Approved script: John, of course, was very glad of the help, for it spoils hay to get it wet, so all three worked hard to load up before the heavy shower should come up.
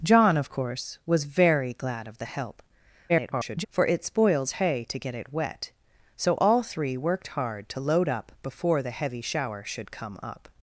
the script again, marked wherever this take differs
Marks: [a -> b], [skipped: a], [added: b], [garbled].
John, of course, was very glad of the help, [garbled] for it spoils hay to get it wet, so all three worked hard to load up before the heavy shower should come up.